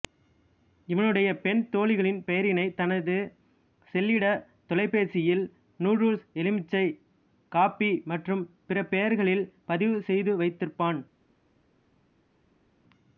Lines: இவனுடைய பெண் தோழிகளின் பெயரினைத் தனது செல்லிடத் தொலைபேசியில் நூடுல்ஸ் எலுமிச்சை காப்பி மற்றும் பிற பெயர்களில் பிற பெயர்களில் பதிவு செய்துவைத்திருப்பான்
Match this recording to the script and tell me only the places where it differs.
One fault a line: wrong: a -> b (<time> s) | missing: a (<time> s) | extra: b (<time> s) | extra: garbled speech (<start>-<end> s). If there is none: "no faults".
missing: பிற பெயர்களில் (9.4 s)